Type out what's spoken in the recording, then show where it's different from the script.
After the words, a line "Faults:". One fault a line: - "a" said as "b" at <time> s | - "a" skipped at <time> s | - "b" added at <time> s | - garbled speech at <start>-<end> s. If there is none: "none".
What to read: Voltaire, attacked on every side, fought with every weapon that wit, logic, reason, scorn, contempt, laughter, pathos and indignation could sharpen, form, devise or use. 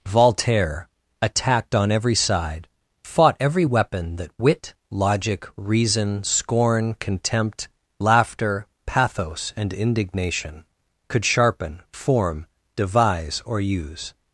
Voltaire, attacked on every side, fought every weapon that wit, logic, reason, scorn, contempt, laughter, pathos and indignation could sharpen, form, devise or use.
Faults:
- "with" skipped at 3.4 s